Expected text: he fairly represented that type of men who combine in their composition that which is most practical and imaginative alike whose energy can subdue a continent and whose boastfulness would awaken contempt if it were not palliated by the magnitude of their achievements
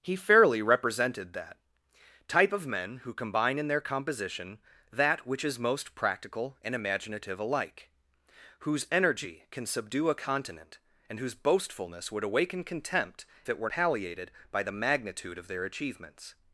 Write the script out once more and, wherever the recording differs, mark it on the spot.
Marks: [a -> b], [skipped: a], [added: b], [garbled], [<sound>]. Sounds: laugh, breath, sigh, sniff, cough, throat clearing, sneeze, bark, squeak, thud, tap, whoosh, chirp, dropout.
he fairly represented that type of men who combine in their composition that which is most practical and imaginative alike whose energy can subdue a continent and whose boastfulness would awaken contempt [skipped: if] it were [skipped: not] palliated by the magnitude of their achievements